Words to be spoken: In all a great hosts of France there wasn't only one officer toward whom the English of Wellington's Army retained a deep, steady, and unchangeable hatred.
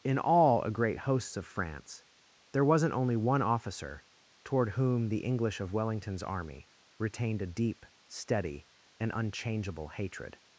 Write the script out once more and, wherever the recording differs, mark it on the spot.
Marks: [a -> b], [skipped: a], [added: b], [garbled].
In all a great hosts of France there wasn't only one officer toward whom the English of Wellington's Army retained a deep, steady, and unchangeable hatred.